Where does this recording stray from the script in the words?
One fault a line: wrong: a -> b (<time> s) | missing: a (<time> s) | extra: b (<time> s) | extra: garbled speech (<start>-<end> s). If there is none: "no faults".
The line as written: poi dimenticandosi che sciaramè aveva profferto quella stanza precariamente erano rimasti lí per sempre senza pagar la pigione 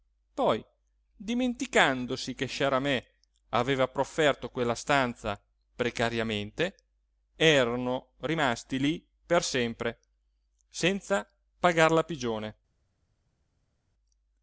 no faults